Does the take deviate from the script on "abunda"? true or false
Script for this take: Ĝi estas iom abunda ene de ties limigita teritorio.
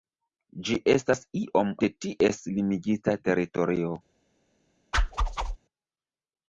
true